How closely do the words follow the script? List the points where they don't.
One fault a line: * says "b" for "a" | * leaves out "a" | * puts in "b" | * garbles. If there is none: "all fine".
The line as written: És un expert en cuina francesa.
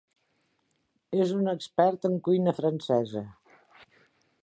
all fine